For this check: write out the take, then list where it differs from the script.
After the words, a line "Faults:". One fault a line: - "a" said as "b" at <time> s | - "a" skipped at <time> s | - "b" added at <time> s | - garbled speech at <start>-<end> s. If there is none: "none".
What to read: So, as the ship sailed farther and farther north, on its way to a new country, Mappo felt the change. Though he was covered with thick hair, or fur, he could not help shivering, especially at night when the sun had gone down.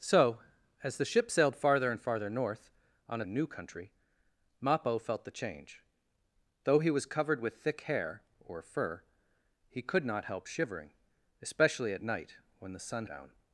So, as the ship sailed farther and farther north, on a new country, Mappo felt the change. Though he was covered with thick hair, or fur, he could not help shivering, especially at night when the sun down.
Faults:
- "its way to" skipped at 3.2 s
- "had gone" skipped at 13.0 s